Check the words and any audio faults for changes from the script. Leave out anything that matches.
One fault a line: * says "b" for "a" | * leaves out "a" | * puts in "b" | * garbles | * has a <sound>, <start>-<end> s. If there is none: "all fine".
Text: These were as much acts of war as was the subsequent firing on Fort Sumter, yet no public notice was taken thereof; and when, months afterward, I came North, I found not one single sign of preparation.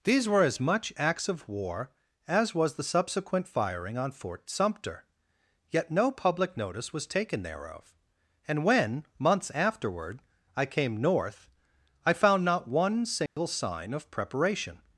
* has a dropout, 13.3-13.4 s